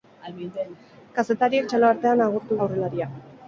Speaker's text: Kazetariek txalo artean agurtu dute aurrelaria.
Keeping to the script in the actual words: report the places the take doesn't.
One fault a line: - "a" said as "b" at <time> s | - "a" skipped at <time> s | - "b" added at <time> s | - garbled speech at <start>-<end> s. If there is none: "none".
- "dute" skipped at 2.6 s